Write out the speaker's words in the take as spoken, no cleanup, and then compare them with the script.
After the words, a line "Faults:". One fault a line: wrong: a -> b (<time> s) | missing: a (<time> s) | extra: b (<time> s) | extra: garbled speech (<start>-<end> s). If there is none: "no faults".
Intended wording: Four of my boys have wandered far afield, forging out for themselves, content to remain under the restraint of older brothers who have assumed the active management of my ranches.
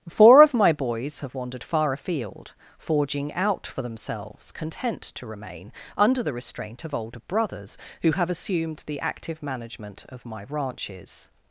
Four of my boys have wandered far afield, forging out for themselves, content to remain under the restraint of older brothers who have assumed the active management of my ranches.
Faults:
no faults